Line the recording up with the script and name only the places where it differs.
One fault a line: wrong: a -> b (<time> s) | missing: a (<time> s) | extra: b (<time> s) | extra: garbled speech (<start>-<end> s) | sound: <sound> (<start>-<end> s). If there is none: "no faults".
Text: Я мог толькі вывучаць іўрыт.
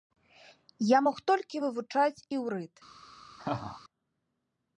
sound: laugh (3.4-3.8 s)